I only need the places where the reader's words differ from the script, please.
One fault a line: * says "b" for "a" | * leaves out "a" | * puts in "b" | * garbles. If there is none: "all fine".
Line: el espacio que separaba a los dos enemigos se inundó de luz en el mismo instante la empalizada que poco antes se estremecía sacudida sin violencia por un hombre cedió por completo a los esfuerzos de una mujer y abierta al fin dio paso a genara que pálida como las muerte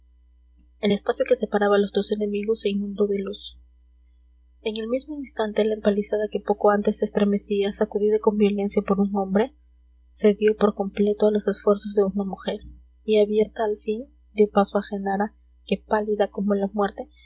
* says "con" for "sin"
* says "la" for "las"